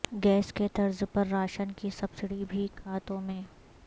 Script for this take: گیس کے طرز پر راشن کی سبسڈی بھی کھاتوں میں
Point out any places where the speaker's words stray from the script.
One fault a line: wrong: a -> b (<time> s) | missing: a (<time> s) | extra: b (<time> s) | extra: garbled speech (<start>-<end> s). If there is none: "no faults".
no faults